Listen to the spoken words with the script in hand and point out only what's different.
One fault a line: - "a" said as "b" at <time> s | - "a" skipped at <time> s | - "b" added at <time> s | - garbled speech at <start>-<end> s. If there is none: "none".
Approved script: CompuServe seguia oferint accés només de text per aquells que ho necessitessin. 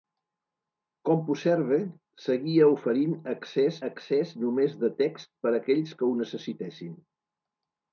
- "accés" added at 3.9 s